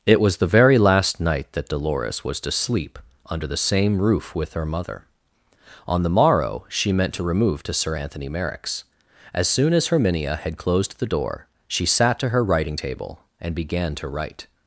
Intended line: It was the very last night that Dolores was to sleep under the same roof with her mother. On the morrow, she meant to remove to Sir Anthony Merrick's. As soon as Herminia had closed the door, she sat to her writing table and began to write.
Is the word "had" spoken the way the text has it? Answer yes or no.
yes